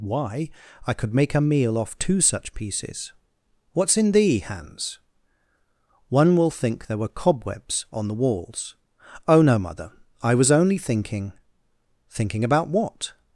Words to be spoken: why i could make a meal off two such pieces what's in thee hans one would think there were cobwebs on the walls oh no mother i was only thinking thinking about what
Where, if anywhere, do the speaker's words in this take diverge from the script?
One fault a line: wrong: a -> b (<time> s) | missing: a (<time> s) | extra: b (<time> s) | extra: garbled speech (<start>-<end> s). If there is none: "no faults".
wrong: would -> will (6.3 s)